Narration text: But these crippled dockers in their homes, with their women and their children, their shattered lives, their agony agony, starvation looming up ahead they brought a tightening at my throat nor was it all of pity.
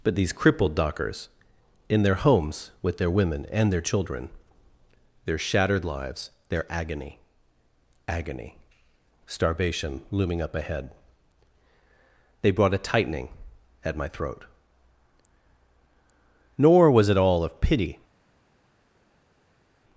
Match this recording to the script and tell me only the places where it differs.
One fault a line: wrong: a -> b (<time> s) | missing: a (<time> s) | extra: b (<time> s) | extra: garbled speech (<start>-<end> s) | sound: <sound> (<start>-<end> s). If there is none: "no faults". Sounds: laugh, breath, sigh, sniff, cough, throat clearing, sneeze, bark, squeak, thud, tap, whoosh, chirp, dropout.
no faults